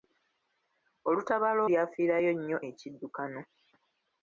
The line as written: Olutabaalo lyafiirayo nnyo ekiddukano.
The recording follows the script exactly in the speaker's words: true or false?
true